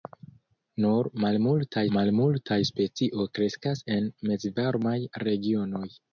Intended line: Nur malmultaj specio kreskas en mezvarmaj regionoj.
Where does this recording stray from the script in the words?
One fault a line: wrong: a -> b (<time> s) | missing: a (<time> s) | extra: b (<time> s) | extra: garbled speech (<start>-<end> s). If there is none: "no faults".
extra: malmultaj (2.0 s)